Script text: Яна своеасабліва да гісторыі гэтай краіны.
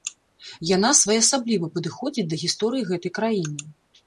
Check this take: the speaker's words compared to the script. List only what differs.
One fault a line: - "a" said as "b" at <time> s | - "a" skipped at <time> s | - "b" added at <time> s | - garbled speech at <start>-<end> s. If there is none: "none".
- "падыходзіць" added at 1.8 s